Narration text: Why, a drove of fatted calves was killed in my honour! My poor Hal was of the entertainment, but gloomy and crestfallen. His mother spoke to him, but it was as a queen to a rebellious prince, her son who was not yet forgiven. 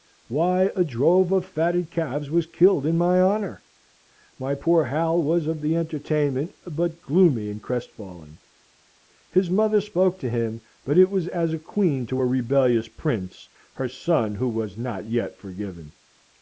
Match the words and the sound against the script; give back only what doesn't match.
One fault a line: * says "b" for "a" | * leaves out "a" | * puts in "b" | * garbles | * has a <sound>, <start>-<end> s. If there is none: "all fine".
all fine